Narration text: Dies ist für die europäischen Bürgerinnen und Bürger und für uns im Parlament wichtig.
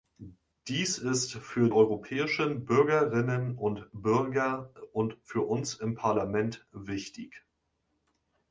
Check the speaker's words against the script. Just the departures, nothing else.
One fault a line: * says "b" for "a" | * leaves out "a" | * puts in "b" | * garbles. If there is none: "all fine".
* leaves out "die"